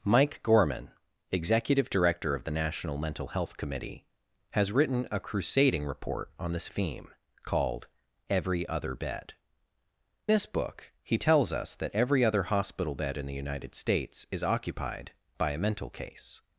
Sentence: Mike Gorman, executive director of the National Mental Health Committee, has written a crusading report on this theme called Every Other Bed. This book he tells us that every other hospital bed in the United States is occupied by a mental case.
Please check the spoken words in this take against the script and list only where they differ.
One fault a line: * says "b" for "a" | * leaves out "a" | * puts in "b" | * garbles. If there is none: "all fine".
all fine